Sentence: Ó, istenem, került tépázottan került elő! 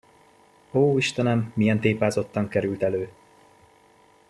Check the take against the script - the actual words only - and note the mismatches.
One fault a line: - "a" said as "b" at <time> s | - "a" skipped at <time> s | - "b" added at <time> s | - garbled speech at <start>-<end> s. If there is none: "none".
- "került" said as "milyen" at 1.5 s